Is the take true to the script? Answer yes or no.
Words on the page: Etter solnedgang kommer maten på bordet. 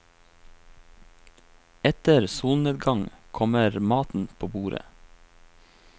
yes